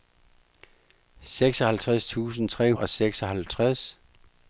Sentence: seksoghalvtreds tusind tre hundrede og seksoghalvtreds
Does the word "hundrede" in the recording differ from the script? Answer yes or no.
yes